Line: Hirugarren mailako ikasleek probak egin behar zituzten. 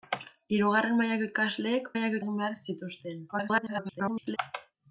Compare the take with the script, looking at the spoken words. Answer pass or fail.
fail